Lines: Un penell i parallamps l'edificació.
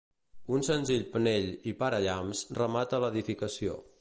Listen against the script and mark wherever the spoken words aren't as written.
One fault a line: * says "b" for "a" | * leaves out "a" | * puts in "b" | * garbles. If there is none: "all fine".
* puts in "senzill"
* puts in "remata"